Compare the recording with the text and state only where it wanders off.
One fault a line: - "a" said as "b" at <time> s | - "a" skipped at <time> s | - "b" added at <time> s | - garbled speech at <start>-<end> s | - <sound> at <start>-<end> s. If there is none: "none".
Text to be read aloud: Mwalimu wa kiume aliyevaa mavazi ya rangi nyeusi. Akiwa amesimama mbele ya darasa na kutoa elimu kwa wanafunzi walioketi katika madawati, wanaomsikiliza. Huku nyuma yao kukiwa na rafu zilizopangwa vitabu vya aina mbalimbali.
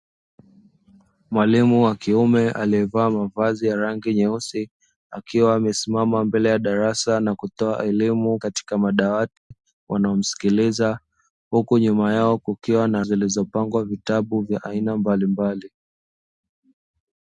- "kwa wanafunzi walioketi" skipped at 8.4 s
- dropout at 9.4-9.5 s
- "rafu" skipped at 13.0 s